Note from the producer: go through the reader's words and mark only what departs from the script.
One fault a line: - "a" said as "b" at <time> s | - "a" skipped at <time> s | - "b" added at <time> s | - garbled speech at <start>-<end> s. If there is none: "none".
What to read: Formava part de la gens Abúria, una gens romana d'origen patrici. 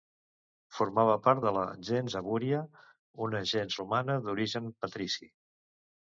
none